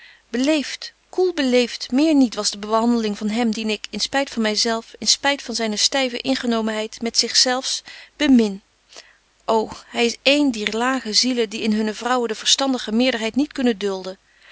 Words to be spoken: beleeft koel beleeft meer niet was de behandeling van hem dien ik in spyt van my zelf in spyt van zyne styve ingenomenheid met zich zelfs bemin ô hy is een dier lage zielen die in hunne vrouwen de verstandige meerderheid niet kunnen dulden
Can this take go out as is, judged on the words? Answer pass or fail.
pass